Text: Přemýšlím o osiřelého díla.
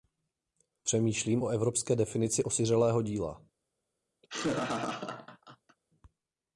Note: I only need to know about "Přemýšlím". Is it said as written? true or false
true